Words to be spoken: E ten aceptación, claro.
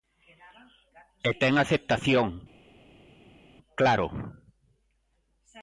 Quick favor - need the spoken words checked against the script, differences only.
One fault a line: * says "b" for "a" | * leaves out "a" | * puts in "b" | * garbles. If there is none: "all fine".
all fine